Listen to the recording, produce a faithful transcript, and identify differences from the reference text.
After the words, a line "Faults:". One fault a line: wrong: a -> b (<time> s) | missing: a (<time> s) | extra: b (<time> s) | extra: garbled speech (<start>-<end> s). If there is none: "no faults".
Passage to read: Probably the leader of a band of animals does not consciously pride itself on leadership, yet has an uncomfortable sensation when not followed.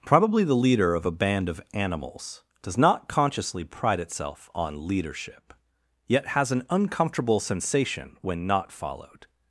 Probably the leader of a band of animals does not consciously pride itself on leadership, yet has an uncomfortable sensation when not followed.
Faults:
no faults